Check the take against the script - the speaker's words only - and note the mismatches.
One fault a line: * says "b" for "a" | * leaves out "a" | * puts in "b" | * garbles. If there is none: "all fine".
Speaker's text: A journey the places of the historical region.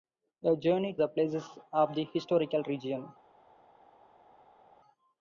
all fine